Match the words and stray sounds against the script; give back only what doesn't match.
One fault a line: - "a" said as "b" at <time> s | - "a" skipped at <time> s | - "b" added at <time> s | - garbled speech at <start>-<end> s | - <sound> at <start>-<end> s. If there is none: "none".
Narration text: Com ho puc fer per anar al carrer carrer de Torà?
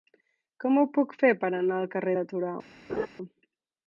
- "carrer" skipped at 2.1 s
- laugh at 2.9-3.1 s